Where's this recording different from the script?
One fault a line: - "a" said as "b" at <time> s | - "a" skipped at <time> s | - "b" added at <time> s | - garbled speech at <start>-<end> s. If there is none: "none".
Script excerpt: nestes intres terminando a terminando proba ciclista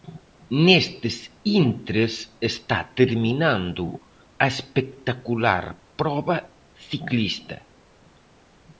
- "está" added at 2.5 s
- "terminando" said as "espectacular" at 4.5 s